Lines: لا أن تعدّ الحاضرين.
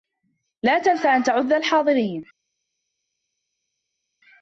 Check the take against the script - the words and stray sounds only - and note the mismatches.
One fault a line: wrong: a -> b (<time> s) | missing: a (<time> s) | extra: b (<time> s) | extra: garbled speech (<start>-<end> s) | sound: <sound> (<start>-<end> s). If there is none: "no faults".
extra: تنس (0.8 s)